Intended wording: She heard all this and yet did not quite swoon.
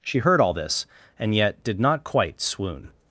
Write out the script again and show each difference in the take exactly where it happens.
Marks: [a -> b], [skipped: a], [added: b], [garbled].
She heard all this and yet did not quite swoon.